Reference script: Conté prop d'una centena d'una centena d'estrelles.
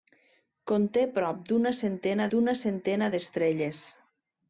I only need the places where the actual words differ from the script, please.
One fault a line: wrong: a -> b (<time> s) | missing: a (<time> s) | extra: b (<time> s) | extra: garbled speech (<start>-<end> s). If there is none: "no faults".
no faults